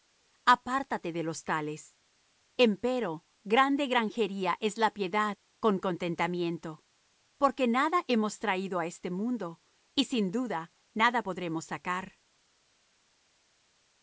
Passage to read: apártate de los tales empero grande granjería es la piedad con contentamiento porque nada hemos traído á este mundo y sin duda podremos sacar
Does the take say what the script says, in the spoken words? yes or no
no